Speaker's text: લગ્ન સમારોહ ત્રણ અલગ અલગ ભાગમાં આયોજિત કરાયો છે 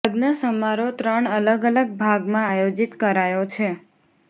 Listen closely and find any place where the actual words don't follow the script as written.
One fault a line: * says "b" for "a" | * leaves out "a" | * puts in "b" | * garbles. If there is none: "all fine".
all fine